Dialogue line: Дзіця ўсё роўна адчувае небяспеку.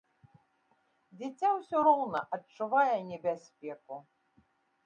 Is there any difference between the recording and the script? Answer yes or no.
no